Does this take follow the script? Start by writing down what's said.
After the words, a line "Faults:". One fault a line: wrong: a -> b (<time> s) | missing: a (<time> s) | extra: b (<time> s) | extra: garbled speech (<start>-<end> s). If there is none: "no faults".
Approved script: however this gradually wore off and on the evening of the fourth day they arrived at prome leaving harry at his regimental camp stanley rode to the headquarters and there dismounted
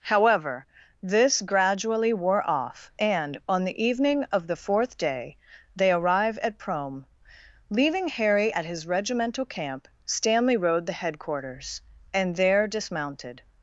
however this gradually wore off and on the evening of the fourth day they arrive at prome leaving harry at his regimental camp stanley rode the headquarters and there dismounted
Faults:
wrong: arrived -> arrive (5.9 s)
missing: to (10.9 s)